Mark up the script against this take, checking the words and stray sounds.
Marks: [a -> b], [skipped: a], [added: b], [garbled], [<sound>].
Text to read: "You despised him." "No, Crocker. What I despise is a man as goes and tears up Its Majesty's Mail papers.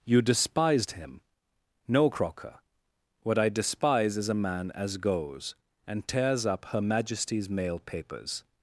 "You despised him." "No, Crocker. What I despise is a man as goes and tears up [Its -> Her] Majesty's Mail papers.